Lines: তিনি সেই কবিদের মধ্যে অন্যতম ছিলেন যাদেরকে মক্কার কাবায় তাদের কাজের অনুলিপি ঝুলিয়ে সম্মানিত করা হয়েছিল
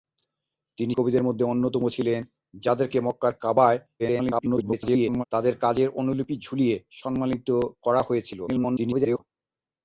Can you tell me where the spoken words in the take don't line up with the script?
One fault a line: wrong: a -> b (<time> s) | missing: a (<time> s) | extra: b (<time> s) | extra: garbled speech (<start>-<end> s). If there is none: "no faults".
missing: সেই (0.9 s)
extra: garbled speech (4.0-5.2 s)
extra: garbled speech (8.5-9.2 s)